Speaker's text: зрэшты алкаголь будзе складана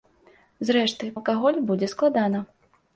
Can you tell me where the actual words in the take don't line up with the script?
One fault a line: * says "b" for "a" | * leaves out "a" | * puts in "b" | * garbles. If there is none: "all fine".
all fine